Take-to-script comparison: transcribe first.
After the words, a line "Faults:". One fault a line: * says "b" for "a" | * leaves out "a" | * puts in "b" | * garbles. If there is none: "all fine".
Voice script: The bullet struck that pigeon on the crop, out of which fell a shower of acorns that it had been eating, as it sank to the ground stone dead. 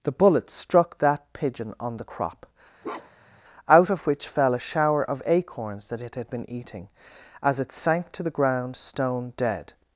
The bullet struck that pigeon on the crop, out of which fell a shower of acorns that it had been eating, as it sank to the ground stone dead.
Faults:
all fine